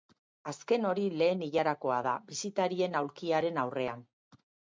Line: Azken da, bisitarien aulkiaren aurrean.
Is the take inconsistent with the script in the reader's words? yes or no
yes